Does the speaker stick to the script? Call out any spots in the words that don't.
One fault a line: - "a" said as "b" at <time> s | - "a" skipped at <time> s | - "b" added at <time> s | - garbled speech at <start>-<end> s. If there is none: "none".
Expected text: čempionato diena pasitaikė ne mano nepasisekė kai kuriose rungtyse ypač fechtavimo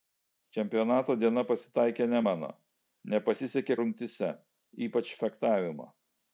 - "kai kuriose" skipped at 3.8 s